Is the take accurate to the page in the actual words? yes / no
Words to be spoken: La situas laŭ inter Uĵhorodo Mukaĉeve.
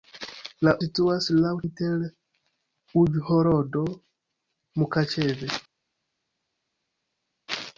yes